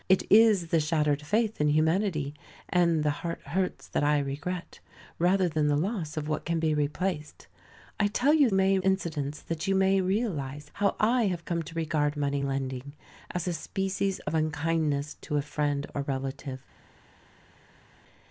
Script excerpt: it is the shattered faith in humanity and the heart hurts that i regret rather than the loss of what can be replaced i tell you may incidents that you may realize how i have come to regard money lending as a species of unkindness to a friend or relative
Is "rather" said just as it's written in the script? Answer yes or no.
yes